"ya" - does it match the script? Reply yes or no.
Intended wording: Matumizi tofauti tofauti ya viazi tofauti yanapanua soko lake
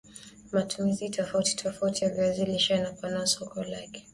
yes